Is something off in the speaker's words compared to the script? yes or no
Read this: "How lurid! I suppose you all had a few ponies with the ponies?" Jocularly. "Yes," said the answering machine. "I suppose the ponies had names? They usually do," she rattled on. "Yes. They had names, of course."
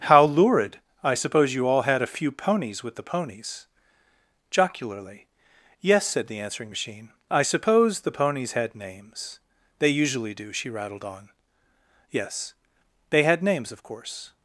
no